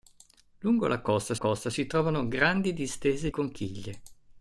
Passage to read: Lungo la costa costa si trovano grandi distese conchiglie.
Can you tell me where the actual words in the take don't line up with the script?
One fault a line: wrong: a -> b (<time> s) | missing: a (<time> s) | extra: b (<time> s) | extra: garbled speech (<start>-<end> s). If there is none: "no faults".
no faults